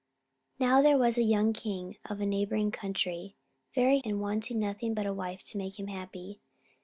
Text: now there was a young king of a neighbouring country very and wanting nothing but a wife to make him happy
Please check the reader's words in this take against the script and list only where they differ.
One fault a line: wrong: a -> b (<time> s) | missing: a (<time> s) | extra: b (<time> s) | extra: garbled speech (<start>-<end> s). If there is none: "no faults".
no faults